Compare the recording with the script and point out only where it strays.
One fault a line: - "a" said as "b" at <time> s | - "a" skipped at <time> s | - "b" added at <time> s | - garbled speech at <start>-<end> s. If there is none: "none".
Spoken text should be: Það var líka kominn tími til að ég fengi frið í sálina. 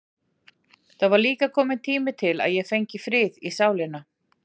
none